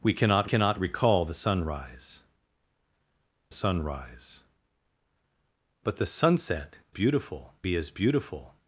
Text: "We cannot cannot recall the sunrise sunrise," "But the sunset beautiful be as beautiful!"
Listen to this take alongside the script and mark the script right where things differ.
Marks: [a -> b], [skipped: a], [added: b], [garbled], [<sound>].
"We cannot cannot recall the sunrise sunrise," "But the sunset beautiful be as beautiful!"